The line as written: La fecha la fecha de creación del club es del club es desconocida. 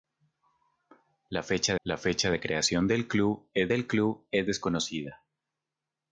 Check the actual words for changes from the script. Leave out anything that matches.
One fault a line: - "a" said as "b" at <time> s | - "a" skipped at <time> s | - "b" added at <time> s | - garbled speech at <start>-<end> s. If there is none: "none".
none